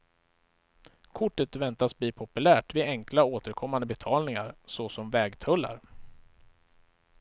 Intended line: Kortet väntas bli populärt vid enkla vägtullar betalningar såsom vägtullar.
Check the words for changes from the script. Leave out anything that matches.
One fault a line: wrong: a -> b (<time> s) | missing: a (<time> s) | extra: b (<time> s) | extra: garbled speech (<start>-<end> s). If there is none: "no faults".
wrong: vägtullar -> återkommande (3.2 s)